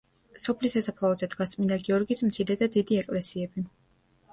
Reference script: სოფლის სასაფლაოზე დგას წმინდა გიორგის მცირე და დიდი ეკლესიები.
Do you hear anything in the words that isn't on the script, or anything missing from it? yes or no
no